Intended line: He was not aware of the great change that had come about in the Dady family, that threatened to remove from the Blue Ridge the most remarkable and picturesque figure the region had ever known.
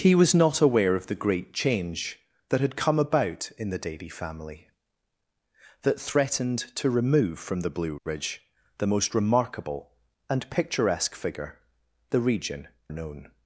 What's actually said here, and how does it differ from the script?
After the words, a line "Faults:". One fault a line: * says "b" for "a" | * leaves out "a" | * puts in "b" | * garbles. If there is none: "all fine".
He was not aware of the great change that had come about in the Dady family, that threatened to remove from the Blue Ridge the most remarkable and picturesque figure the region known.
Faults:
* leaves out "had ever"